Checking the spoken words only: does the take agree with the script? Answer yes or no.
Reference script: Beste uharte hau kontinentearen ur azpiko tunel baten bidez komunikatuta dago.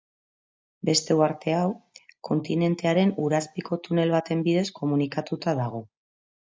yes